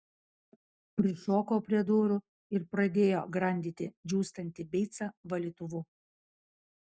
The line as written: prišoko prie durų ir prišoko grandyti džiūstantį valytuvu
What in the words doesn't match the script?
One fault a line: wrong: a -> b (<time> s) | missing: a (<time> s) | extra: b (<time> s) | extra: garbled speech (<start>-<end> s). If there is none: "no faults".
wrong: prišoko -> pradėjo (2.7 s)
extra: beicą (4.8 s)